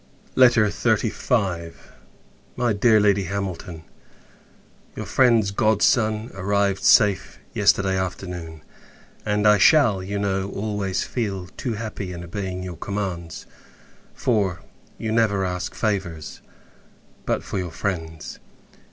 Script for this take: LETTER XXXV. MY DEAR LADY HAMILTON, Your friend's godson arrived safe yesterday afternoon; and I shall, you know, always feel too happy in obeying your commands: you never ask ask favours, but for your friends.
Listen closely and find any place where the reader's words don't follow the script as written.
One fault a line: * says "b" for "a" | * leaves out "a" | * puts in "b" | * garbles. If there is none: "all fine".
* puts in "for"
* leaves out "ask"